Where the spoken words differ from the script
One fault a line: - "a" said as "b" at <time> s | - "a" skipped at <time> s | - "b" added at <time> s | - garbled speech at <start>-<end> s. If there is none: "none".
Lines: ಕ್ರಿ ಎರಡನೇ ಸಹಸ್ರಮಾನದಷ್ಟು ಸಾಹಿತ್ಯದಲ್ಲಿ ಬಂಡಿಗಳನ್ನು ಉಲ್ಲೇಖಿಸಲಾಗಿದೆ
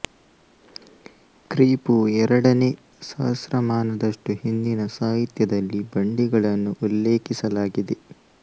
- "ಪೂ" added at 1.8 s
- "ಹಿಂದಿನ" added at 4.4 s